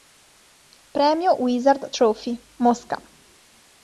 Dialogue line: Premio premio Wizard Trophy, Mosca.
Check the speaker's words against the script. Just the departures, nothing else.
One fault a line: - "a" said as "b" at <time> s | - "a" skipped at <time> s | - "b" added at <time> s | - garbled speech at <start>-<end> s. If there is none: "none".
- "premio" skipped at 1.4 s